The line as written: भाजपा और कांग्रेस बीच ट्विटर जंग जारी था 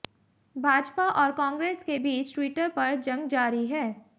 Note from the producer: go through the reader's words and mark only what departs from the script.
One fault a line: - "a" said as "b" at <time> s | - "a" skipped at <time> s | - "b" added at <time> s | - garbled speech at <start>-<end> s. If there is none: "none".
- "के" added at 1.8 s
- "पर" added at 2.7 s
- "था" said as "है" at 3.7 s